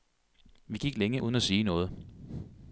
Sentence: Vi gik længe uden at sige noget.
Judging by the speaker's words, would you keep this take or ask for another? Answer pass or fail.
pass